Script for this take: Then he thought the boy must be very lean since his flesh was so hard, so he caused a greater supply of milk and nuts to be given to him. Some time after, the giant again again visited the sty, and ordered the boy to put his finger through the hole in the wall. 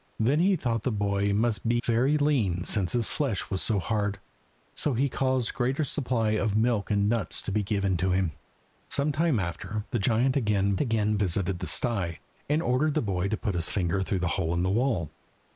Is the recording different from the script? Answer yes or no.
no